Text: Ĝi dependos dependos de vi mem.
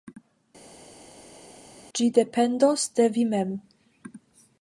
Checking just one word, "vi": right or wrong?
right